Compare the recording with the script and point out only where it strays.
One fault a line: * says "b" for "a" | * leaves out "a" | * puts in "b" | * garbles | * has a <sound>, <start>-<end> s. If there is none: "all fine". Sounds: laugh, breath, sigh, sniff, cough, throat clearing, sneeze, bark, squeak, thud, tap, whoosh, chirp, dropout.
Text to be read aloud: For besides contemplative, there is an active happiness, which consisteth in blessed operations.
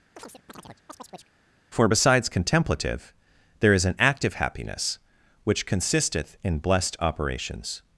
* has a chirp, 0.2-1.4 s